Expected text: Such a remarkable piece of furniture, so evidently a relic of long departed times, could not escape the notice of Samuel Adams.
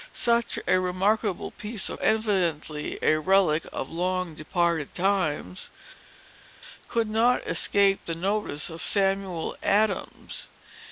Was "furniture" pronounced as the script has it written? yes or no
no